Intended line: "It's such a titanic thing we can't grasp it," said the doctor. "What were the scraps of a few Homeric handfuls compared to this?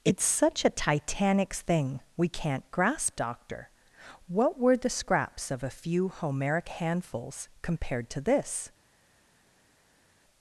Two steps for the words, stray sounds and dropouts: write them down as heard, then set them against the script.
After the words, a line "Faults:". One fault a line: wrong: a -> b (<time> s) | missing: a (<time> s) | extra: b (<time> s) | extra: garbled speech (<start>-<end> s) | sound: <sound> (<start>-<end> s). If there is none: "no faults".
"It's such a titanic thing we can't grasp doctor. "What were the scraps of a few Homeric handfuls compared to this?
Faults:
missing: it said the (3.2 s)